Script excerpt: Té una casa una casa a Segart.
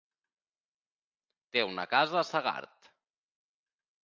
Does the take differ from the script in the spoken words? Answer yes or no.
yes